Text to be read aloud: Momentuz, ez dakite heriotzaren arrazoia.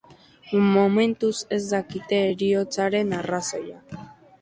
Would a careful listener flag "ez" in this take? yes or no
no